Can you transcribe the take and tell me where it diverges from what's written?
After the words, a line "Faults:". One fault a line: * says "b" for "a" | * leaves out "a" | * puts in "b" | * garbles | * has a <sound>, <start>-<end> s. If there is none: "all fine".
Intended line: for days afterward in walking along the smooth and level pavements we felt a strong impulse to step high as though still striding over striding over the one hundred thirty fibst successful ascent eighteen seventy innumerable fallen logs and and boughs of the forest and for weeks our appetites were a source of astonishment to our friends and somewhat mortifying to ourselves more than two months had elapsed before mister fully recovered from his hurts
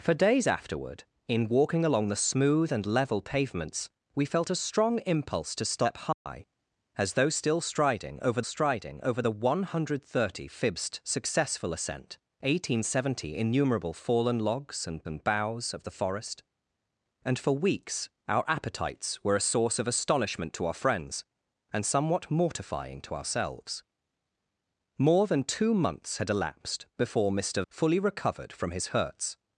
for days afterward in walking along the smooth and level pavements we felt a strong impulse to step high as though still striding over striding over the one hundred thirty fibst successful ascent eighteen seventy innumerable fallen logs and and boughs of the forest and for weeks our appetites were a source of astonishment to our friends and somewhat mortifying to ourselves more than two months had elapsed before mister fully recovered from his hurts
Faults:
* has a dropout, 6.1-6.3 s